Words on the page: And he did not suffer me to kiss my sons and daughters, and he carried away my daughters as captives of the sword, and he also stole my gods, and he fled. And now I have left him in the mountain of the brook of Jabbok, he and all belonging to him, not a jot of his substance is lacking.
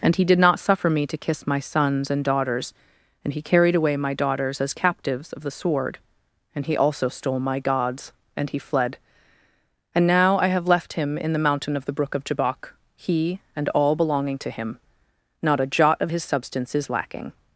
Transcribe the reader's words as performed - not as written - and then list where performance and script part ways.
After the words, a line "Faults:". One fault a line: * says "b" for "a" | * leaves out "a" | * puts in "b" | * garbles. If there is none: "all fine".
And he did not suffer me to kiss my sons and daughters, and he carried away my daughters as captives of the sword, and he also stole my gods, and he fled. And now I have left him in the mountain of the brook of Jabbok, he and all belonging to him, not a jot of his substance is lacking.
Faults:
all fine